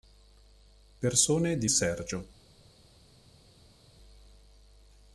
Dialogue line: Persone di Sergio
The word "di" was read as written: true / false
true